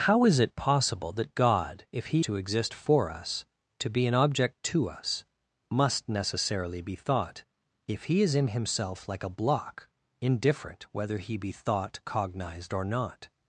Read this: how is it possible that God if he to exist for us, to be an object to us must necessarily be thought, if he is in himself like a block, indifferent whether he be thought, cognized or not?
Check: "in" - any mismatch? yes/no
no